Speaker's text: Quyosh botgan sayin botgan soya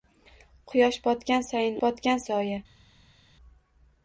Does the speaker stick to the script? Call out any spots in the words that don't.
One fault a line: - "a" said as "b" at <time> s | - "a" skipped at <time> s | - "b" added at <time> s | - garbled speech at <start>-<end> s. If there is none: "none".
none